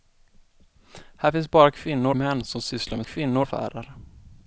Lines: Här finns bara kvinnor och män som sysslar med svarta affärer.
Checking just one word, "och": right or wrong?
wrong